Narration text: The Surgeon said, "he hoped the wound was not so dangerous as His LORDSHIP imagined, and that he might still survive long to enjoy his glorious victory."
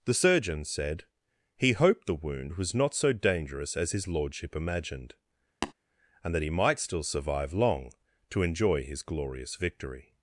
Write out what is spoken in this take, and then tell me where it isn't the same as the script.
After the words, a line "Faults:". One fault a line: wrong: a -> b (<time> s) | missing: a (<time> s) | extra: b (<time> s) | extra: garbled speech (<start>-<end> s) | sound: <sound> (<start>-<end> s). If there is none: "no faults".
The Surgeon said, "he hoped the wound was not so dangerous as His LORDSHIP imagined, and that he might still survive long to enjoy his glorious victory."
Faults:
sound: tap (5.6-5.7 s)